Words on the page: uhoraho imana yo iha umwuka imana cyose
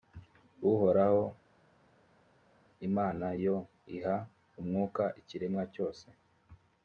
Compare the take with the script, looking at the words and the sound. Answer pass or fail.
fail